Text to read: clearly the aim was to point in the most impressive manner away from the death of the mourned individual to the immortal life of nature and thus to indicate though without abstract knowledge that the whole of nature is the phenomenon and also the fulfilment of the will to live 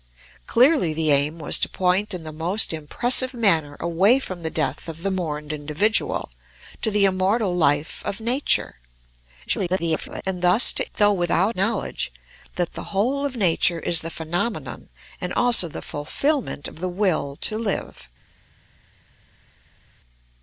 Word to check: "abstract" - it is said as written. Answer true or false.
false